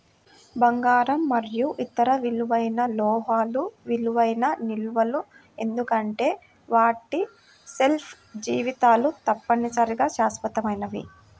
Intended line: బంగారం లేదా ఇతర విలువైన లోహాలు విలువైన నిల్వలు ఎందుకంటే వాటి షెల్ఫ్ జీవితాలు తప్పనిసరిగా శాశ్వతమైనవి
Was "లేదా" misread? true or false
true